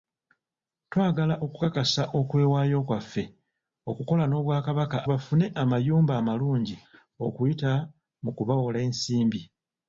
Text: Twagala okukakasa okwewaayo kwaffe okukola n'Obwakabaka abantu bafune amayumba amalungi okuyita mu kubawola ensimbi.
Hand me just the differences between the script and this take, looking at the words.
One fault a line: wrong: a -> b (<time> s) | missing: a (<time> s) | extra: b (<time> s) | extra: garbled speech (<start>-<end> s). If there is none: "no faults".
missing: abantu (5.0 s)